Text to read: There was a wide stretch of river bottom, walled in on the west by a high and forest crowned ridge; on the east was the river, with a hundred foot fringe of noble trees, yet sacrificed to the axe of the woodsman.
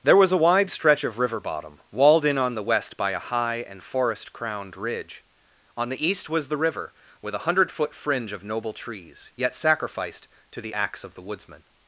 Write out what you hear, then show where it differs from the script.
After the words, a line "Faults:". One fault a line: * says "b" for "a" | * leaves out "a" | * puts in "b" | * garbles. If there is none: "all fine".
There was a wide stretch of river bottom, walled in on the west by a high and forest crowned ridge; on the east was the river, with a hundred foot fringe of noble trees, yet sacrificed to the axe of the woodsman.
Faults:
all fine